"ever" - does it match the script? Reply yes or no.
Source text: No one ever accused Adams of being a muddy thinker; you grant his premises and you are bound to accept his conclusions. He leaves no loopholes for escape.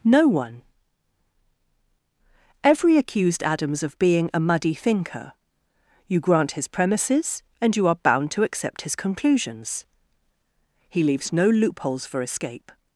no